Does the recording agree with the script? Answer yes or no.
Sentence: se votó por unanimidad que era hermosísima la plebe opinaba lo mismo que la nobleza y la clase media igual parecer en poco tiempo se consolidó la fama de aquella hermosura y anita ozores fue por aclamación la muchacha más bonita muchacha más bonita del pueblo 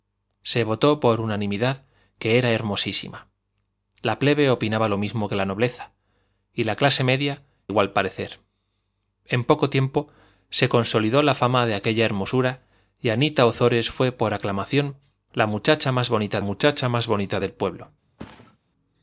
yes